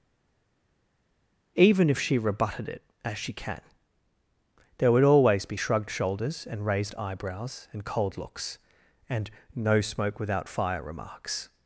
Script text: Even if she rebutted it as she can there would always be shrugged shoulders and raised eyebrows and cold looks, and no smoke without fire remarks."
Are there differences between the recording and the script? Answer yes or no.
no